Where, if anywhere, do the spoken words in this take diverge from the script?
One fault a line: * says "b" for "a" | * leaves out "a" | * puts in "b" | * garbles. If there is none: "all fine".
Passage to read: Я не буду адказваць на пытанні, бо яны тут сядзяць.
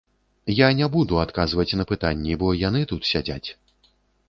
all fine